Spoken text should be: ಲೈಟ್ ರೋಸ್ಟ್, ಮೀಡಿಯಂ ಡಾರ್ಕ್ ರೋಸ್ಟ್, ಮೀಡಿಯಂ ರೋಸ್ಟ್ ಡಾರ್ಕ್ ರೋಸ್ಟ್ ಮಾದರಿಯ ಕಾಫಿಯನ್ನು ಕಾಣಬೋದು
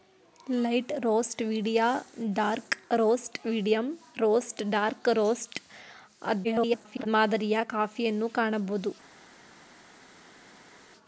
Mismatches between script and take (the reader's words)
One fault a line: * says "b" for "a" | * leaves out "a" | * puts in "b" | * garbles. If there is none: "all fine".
* garbles